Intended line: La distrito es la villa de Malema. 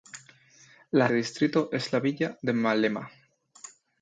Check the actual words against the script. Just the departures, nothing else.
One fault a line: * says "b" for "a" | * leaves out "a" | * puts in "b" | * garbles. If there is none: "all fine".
all fine